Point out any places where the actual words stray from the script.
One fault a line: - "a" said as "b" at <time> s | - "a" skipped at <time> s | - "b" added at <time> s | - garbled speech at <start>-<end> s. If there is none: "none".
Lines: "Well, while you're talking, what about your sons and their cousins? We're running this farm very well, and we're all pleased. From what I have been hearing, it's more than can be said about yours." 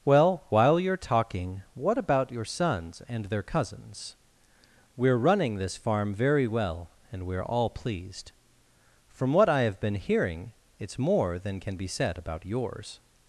none